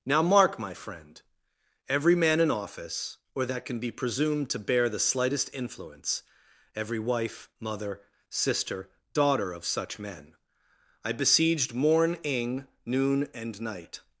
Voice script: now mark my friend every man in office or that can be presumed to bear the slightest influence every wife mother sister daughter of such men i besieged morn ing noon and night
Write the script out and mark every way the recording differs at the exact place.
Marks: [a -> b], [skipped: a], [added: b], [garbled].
now mark my friend every man in office or that can be presumed to bear the slightest influence every wife mother sister daughter of such men i besieged morn ing noon and night